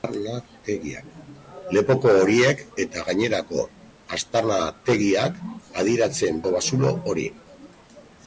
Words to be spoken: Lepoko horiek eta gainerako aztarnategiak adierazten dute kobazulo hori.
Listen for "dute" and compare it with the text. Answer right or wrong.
wrong